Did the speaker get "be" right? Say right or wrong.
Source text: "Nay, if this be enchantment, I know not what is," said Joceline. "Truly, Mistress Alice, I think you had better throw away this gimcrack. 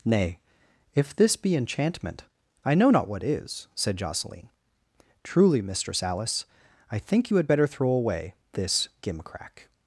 right